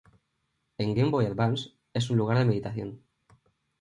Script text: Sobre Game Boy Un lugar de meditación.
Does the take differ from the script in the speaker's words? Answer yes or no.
yes